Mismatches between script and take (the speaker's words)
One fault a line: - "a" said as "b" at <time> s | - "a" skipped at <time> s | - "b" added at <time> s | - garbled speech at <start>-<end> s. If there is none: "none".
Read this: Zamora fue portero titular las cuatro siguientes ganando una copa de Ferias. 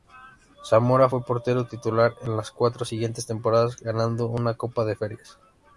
- "en" added at 2.2 s
- "temporadas" added at 3.3 s